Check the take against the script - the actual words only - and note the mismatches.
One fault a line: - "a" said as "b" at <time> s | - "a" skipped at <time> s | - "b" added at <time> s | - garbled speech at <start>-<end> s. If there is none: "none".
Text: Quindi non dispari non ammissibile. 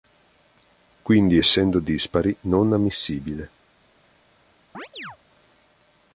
- "non" said as "essendo" at 1.3 s